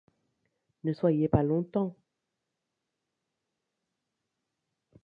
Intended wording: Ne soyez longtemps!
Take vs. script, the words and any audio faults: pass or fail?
fail